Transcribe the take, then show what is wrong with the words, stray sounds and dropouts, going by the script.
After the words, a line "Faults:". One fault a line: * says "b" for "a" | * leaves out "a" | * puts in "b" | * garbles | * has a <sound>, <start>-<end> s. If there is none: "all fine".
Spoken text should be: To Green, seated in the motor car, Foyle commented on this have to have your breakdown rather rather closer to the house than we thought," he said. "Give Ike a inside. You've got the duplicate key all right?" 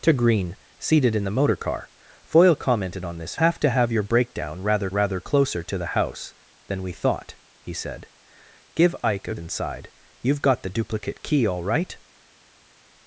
To Green, seated in the motor car, Foyle commented on this have to have your breakdown rather rather closer to the house than we thought," he said. "Give Ike a inside. You've got the duplicate key all right?"
Faults:
all fine